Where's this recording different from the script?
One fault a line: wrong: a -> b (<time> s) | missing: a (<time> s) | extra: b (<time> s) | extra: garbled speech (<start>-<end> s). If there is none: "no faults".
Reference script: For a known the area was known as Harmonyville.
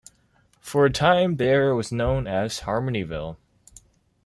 wrong: known -> time (0.9 s)